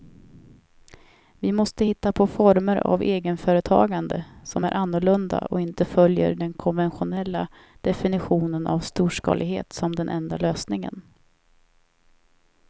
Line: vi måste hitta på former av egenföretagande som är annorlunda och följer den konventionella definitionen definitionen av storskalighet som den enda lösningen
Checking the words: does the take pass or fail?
fail